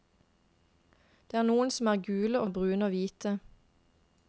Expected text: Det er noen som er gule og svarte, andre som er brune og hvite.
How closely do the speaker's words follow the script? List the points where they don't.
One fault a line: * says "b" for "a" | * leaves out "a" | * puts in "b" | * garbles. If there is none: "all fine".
* leaves out "svarte andre som"